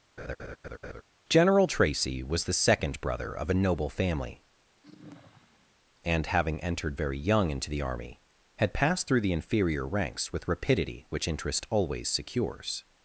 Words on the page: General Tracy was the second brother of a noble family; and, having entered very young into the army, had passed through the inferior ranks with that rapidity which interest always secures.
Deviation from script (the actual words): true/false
true